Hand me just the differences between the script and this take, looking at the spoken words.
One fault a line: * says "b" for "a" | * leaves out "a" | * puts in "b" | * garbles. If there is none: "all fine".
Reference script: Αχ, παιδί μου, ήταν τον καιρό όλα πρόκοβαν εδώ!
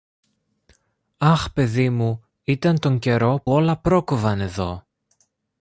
all fine